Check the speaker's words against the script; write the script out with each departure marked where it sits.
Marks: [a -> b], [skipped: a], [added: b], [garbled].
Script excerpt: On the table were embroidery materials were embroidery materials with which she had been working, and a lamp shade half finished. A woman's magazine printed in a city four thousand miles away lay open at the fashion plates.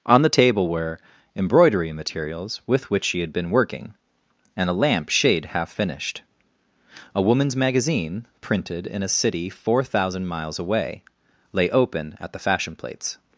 On the table were embroidery materials [skipped: were embroidery materials] with which she had been working, and a lamp shade half finished. A woman's magazine printed in a city four thousand miles away lay open at the fashion plates.